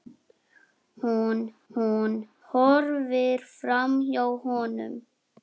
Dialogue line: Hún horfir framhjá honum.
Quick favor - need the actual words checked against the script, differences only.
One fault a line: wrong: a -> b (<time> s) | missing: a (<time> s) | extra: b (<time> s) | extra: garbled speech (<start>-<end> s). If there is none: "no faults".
extra: hún (1.7 s)